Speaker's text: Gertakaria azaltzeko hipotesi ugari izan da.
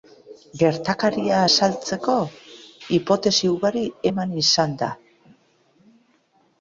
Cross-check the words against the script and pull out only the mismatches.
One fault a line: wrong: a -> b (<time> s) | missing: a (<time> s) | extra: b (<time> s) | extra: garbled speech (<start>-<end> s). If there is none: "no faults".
extra: eman (4.1 s)